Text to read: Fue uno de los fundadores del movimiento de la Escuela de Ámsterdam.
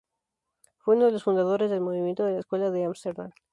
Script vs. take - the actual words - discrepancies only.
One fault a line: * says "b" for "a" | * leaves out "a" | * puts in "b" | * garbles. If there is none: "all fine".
all fine